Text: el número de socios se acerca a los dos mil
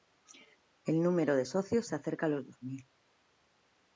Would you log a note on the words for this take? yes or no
no